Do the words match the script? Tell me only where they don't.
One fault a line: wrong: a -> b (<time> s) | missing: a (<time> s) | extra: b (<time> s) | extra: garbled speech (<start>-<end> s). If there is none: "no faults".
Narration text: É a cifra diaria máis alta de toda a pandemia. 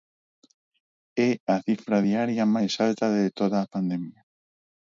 no faults